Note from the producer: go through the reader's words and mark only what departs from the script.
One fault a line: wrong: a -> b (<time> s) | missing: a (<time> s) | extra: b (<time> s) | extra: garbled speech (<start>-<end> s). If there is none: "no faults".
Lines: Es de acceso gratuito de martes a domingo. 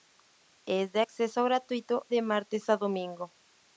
no faults